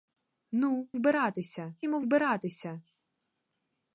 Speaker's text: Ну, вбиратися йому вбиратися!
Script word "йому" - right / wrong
right